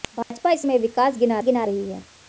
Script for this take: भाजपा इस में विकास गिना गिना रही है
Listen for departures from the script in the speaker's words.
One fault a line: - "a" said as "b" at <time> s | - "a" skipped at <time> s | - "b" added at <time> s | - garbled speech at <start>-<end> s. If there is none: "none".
none